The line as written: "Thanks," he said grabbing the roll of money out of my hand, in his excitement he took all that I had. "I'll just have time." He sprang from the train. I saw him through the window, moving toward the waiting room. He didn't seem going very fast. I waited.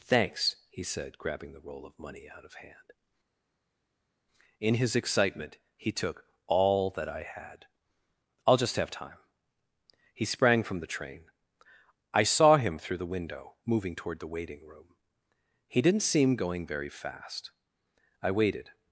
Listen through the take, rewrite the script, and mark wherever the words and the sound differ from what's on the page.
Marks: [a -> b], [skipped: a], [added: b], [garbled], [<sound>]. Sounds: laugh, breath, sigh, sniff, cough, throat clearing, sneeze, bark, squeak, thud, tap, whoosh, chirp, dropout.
"Thanks," he said grabbing the roll of money out of [skipped: my] hand, in his excitement he took all that I had. "I'll just have time." He sprang from the train. I saw him through the window, moving toward the waiting room. He didn't seem going very fast. I waited.